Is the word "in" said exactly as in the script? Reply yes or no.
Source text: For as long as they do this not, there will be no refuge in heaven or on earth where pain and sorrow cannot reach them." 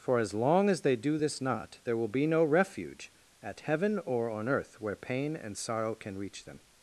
no